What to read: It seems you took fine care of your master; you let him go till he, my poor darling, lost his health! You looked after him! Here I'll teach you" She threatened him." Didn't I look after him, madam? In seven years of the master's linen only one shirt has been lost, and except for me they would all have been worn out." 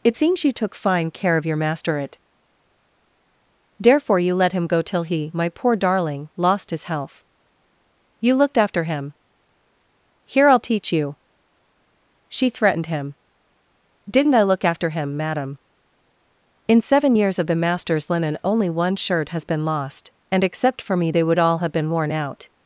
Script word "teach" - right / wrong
right